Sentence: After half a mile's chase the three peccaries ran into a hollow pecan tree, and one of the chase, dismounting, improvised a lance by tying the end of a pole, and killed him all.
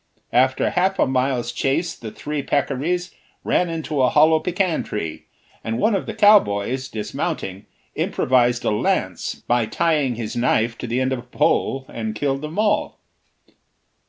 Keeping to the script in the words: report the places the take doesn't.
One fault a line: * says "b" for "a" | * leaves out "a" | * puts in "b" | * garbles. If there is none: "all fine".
* says "cowboys" for "chase"
* puts in "his knife to"
* says "them" for "him"